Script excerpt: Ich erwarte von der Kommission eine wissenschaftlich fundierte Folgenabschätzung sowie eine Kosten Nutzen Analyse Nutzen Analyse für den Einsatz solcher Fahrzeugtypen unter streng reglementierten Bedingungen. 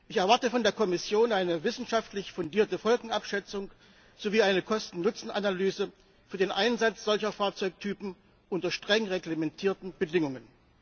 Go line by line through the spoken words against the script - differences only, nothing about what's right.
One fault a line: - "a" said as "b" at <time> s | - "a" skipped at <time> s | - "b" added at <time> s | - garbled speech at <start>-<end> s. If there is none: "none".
- "Nutzen Analyse" skipped at 5.9 s